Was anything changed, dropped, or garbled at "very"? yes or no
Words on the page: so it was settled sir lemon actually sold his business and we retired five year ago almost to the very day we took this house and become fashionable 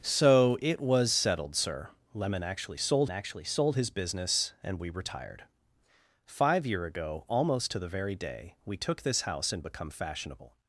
no